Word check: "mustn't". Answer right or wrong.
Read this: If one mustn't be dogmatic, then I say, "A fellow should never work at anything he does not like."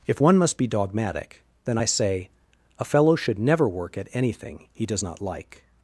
wrong